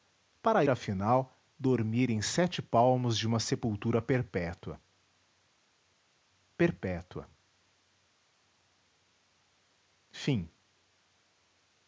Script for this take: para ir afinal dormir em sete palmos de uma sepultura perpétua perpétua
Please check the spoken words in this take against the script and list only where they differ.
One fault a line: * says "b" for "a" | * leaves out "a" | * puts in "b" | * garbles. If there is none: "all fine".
* leaves out "ir"